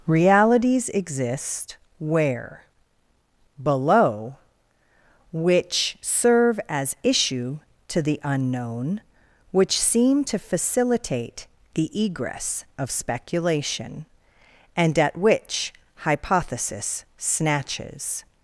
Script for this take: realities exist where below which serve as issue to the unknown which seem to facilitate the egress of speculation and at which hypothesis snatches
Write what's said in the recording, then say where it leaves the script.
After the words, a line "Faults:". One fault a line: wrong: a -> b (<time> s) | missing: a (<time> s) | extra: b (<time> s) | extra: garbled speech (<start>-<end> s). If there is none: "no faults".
realities exist where below which serve as issue to the unknown which seem to facilitate the egress of speculation and at which hypothesis snatches
Faults:
no faults